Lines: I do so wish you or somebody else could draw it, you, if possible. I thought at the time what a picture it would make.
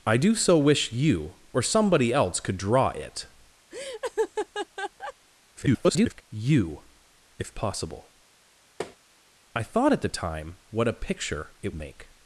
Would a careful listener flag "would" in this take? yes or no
yes